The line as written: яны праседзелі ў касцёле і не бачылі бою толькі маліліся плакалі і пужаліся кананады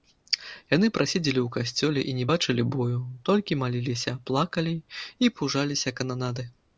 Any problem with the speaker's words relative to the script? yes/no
no